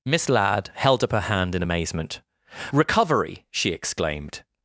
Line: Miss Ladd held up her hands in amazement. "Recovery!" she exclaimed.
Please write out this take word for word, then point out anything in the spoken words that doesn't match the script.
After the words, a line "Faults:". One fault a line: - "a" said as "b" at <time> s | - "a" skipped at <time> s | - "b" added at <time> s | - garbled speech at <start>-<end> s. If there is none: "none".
Miss Ladd held up her hand in amazement. "Recovery!" she exclaimed.
Faults:
- "hands" said as "hand" at 1.2 s